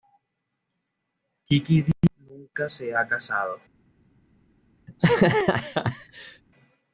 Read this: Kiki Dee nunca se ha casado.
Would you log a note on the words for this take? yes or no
no